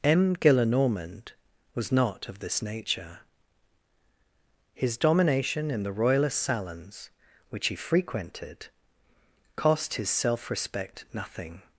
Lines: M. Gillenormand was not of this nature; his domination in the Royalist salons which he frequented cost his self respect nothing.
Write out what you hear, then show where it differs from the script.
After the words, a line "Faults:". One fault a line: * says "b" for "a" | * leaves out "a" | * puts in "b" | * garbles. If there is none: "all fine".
M. Gillenormand was not of this nature; his domination in the Royalist salons which he frequented cost his self respect nothing.
Faults:
all fine